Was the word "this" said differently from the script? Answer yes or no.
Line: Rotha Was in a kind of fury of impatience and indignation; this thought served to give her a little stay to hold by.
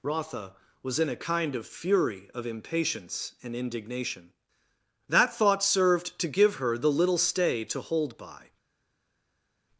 yes